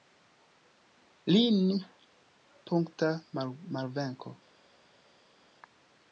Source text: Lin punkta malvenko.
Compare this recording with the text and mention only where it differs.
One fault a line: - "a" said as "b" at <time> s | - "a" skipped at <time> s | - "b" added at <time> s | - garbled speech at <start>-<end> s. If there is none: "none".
none